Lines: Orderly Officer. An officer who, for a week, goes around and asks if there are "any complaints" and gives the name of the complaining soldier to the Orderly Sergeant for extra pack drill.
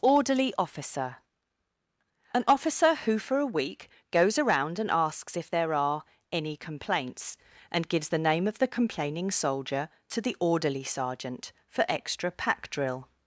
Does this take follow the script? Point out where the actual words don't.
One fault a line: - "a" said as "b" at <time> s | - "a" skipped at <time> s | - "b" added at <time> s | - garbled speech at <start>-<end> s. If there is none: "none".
none